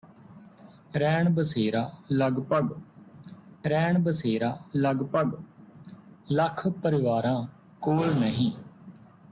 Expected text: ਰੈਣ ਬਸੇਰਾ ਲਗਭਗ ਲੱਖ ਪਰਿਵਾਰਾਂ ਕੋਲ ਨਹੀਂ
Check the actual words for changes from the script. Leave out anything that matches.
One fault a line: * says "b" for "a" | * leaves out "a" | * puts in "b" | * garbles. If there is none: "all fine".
* puts in "ਰੈਣ ਬਸੇਰਾ ਲਗਭਗ"